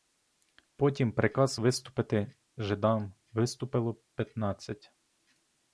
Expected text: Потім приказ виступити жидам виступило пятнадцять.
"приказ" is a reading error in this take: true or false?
false